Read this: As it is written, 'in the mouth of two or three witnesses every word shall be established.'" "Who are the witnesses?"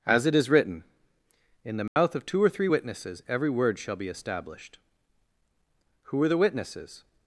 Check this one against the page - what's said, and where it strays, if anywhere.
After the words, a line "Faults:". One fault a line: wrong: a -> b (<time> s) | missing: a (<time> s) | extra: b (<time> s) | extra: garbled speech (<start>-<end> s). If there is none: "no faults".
As it is written, 'in the mouth of two or three witnesses every word shall be established.'" "Who are the witnesses?"
Faults:
no faults